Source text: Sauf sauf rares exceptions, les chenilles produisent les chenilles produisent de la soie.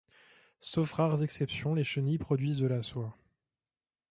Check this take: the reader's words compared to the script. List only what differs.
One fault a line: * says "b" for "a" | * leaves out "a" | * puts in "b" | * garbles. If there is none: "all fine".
* leaves out "sauf"
* leaves out "les chenilles produisent"